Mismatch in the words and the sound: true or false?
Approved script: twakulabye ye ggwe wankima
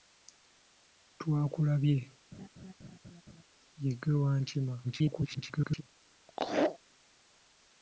true